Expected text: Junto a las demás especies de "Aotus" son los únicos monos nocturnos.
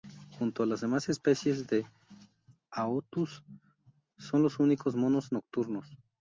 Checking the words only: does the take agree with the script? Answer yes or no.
yes